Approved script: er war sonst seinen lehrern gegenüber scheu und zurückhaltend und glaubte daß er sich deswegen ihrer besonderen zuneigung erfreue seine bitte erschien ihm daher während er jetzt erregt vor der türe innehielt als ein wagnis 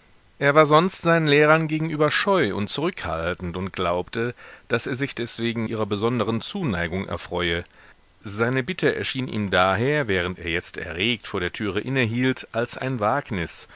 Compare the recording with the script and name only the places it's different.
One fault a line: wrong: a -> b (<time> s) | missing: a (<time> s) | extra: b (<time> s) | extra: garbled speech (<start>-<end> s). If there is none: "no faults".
no faults